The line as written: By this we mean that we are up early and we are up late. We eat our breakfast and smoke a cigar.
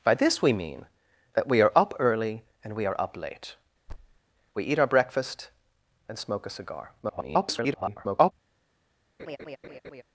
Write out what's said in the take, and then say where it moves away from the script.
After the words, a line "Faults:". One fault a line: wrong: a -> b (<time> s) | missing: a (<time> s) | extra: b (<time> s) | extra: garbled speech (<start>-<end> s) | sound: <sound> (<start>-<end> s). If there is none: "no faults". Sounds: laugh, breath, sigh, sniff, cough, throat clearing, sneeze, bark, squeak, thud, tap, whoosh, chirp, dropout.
By this we mean that we are up early and we are up late. We eat our breakfast and smoke a cigar. [garbled]
Faults:
sound: thud (3.9-4.2 s)
extra: garbled speech (7.0-8.3 s)
sound: laugh (9.2-10.0 s)